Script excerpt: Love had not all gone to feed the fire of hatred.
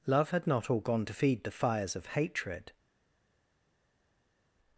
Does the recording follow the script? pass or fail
fail